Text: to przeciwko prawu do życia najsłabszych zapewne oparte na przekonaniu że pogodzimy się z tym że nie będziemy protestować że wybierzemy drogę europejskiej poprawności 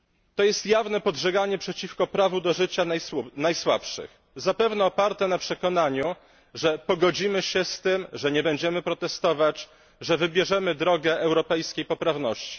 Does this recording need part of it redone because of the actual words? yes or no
yes